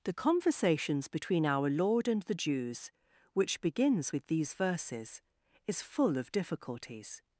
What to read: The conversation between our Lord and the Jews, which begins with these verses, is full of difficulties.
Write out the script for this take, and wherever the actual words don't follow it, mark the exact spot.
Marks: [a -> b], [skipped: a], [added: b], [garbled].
The [conversation -> conversations] between our Lord and the Jews, which begins with these verses, is full of difficulties.